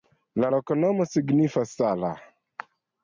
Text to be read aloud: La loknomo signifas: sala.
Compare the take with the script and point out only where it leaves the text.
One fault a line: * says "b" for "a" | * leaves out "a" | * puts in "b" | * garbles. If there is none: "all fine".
all fine